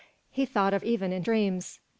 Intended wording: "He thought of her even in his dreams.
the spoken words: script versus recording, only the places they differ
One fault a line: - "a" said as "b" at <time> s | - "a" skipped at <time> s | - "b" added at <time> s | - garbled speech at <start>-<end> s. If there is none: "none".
- "her" skipped at 0.8 s
- "his" skipped at 1.2 s